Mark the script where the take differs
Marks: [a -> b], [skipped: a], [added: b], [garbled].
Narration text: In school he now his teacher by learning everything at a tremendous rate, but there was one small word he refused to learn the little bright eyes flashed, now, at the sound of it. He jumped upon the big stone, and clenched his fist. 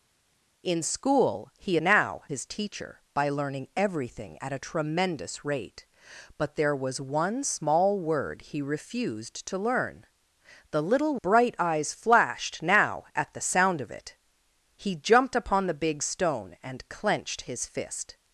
In school he now his teacher by learning everything at a tremendous rate, but there was one small word he refused to learn the little bright eyes flashed, now, at the sound of it. He jumped upon the big stone, and clenched his fist.